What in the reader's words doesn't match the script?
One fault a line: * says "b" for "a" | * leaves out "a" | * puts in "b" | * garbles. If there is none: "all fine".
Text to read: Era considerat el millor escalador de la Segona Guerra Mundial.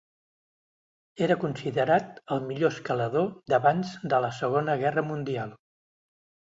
* puts in "d'abans"